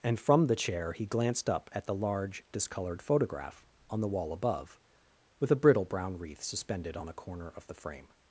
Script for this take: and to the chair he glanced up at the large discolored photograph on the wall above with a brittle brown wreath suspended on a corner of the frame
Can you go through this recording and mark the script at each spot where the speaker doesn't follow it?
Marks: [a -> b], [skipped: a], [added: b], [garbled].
and [to -> from] the chair he glanced up at the large discolored photograph on the wall above with a brittle brown wreath suspended on a corner of the frame